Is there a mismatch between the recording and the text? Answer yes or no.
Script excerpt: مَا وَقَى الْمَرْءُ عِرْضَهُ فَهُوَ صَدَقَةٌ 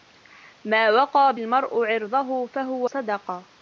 no